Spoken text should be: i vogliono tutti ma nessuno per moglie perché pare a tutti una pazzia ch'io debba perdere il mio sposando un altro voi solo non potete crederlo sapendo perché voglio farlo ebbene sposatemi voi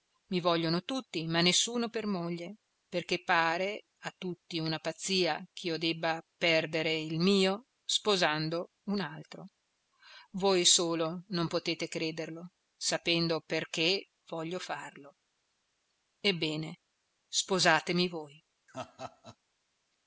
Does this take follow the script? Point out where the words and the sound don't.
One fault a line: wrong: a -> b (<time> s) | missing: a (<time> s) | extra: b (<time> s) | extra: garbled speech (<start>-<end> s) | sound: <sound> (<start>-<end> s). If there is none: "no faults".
sound: laugh (18.7-19.4 s)